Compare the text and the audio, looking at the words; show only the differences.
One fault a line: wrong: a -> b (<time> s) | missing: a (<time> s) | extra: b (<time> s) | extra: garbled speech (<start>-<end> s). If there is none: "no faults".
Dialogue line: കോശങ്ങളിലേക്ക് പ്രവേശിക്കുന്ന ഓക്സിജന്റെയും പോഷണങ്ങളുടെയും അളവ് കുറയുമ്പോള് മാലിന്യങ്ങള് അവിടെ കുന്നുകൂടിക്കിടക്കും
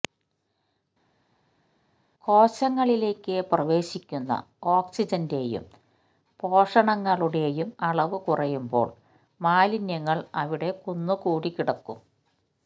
no faults